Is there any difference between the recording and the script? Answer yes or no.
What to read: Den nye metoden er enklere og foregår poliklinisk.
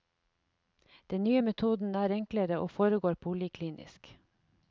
no